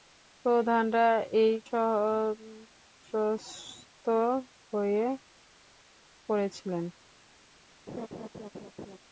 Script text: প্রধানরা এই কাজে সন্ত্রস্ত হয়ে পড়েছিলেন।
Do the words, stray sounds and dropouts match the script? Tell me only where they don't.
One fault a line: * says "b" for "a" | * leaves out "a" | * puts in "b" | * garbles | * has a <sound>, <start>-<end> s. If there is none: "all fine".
* leaves out "কাজে"
* has a laugh, 7.9-9.0 s